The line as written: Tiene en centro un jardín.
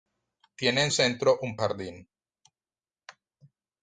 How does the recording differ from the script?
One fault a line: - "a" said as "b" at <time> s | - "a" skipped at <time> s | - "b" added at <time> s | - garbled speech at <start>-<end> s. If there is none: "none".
none